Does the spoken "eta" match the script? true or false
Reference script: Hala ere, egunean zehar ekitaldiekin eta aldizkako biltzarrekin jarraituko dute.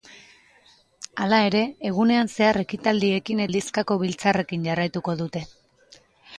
false